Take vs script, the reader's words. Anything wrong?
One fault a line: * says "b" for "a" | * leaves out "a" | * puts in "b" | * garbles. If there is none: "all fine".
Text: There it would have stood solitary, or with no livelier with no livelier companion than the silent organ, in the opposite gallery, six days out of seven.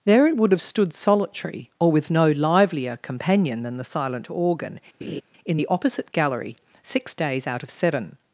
* leaves out "with no livelier"